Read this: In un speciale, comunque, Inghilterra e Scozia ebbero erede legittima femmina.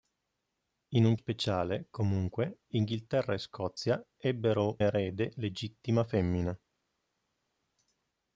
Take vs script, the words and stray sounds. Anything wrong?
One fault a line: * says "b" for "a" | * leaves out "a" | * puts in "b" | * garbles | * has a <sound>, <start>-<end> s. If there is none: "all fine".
all fine